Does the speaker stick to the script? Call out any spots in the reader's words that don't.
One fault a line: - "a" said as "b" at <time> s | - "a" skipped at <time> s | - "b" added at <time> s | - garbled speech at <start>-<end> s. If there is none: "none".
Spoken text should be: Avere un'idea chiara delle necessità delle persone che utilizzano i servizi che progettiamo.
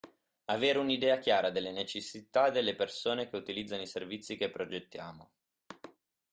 none